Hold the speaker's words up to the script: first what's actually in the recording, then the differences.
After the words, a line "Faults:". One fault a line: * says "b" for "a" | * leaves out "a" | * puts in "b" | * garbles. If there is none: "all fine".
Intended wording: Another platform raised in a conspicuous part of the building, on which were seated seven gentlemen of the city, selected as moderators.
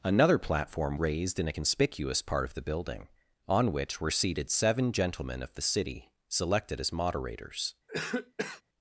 Another platform raised in a conspicuous part of the building, on which were seated seven gentlemen of the city, selected as moderators.
Faults:
all fine